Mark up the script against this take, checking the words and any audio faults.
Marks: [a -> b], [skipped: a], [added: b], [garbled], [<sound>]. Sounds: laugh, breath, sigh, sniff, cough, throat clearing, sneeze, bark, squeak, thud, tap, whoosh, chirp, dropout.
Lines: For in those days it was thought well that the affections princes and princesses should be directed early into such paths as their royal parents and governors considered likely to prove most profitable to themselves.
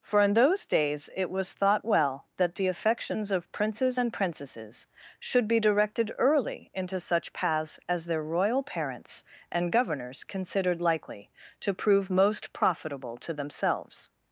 For in those days it was thought well that the affections [added: of] princes and princesses should be directed early into such paths as their royal parents and governors considered likely to prove most profitable to themselves.